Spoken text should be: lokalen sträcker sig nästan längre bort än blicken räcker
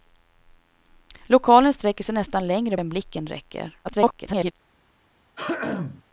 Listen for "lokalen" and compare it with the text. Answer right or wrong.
right